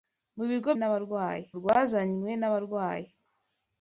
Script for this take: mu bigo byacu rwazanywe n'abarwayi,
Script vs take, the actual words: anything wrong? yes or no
yes